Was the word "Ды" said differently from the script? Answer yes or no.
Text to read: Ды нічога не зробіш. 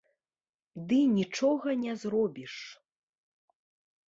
no